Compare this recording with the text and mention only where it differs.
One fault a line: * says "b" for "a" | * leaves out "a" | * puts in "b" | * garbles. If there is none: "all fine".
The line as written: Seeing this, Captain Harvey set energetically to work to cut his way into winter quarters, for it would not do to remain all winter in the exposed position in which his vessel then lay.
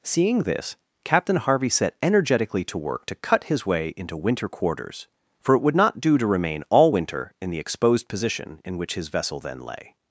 all fine